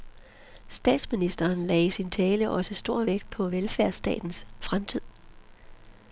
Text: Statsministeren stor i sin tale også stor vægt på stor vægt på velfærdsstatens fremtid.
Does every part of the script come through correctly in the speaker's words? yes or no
no